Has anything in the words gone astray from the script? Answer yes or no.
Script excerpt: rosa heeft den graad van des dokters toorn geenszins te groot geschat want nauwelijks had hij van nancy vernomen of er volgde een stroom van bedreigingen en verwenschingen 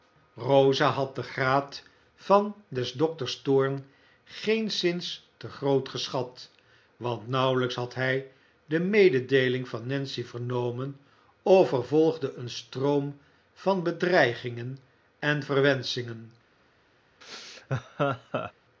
yes